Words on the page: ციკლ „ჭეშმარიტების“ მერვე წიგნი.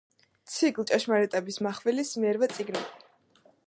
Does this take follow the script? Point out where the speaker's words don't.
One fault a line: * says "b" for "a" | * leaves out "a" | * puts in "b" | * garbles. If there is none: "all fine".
* puts in "მახვილის"